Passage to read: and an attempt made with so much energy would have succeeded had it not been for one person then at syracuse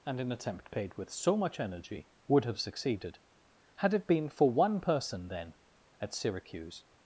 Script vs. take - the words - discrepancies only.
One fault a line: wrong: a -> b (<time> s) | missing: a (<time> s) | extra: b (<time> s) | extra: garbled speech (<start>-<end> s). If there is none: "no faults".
wrong: made -> paid (0.7 s)
missing: not (4.1 s)